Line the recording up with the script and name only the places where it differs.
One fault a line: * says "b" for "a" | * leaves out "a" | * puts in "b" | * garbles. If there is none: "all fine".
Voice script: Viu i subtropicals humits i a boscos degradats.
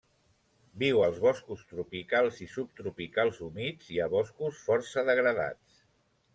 * puts in "als boscos tropicals"
* puts in "força"